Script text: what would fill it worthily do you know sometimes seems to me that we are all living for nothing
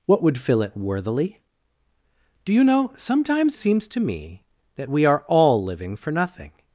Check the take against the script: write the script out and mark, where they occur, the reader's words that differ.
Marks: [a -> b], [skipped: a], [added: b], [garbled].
what would fill it worthily do you know sometimes seems to me that we are all living for nothing